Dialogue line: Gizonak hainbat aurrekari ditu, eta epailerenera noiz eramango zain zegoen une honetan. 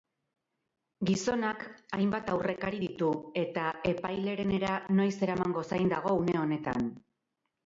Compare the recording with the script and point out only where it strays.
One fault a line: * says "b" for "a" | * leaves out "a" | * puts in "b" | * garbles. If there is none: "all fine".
* says "dago" for "zegoen"